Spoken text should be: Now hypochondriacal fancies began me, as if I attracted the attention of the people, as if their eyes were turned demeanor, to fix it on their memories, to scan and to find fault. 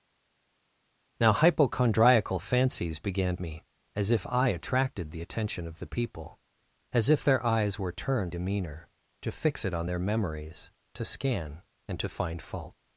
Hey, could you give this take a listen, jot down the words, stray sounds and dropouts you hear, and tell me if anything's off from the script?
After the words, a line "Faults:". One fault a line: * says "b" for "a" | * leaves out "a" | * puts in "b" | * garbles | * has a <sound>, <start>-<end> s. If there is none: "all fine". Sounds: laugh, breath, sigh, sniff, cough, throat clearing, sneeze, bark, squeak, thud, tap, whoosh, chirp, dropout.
Now hypochondriacal fancies began me, as if I attracted the attention of the people, as if their eyes were turned demeanor, to fix it on their memories, to scan and to find fault.
Faults:
all fine